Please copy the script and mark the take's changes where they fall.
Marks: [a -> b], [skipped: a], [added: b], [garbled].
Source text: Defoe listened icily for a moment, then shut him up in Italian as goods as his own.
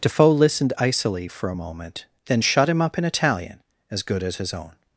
Defoe listened icily for a moment, then shut him up in Italian as [goods -> good] as his own.